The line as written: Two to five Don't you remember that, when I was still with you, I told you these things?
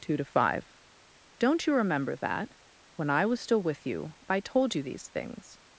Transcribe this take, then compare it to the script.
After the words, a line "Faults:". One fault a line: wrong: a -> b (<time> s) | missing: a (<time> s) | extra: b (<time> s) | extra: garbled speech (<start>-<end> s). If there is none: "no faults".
Two to five Don't you remember that, when I was still with you, I told you these things?
Faults:
no faults